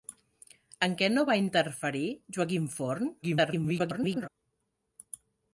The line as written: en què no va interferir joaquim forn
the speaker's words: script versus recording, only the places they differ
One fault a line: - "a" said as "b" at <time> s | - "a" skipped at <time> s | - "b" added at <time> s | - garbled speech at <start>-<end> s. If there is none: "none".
- garbled speech at 3.2-4.3 s